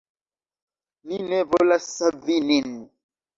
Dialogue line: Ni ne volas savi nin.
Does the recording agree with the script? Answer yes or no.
yes